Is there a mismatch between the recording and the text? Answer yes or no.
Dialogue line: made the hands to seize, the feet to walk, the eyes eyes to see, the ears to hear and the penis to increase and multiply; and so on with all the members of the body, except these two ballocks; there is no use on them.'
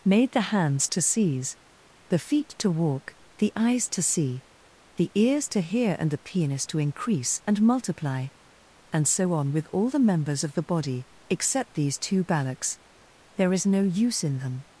yes